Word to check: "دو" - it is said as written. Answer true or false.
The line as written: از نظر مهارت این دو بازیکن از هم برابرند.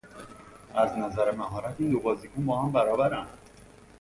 true